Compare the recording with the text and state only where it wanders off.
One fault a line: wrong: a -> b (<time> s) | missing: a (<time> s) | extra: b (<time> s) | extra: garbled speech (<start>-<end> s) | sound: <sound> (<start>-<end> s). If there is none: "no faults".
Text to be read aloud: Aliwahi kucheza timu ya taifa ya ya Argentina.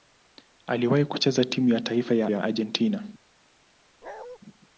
sound: bark (4.0-4.4 s)